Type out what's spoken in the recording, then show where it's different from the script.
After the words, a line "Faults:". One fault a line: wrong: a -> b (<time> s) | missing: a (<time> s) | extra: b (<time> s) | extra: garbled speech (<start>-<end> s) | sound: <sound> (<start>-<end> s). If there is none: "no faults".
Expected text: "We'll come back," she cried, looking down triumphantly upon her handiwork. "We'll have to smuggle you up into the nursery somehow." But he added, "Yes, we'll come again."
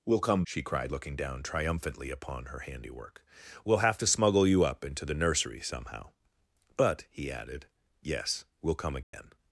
"We'll come," she cried, looking down triumphantly upon her handiwork. "We'll have to smuggle you up into the nursery somehow." But he added, "Yes, we'll come again."
Faults:
missing: back (0.4 s)
sound: dropout (9.0-9.1 s)